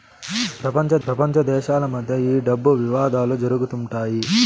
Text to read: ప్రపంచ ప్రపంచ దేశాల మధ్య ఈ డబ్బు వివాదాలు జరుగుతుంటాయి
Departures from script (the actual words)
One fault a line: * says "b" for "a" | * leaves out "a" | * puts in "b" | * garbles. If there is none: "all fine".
all fine